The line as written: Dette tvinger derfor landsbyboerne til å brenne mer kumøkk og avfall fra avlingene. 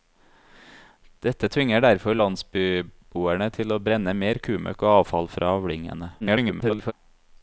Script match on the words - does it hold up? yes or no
no